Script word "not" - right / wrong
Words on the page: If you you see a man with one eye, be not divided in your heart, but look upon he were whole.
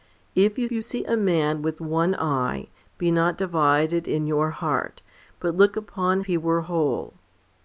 right